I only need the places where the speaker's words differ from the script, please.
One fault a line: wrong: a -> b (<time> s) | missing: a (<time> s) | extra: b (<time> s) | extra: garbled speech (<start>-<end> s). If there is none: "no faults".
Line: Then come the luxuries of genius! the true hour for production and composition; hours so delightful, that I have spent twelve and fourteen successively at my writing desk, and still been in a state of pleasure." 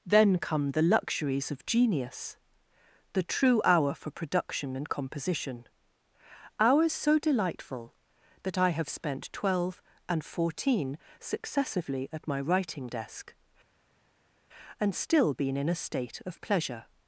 no faults